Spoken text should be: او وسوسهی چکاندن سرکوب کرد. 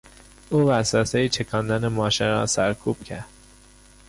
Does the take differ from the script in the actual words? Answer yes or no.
yes